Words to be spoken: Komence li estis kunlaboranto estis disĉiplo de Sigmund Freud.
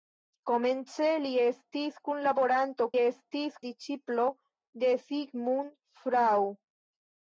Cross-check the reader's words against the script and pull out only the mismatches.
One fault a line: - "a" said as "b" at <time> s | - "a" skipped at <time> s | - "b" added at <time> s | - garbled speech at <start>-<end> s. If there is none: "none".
none